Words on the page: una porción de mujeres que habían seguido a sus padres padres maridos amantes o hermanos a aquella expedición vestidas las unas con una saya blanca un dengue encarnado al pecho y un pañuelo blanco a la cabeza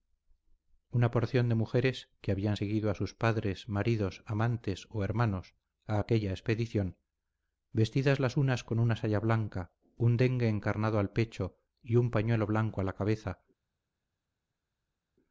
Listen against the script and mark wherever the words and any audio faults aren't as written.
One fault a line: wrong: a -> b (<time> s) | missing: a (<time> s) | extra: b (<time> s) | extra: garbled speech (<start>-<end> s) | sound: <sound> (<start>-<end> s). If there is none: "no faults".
missing: padres (3.7 s)